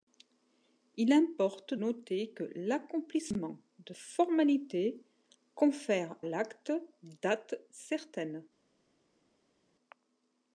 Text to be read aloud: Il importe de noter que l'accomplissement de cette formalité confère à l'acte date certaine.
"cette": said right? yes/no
no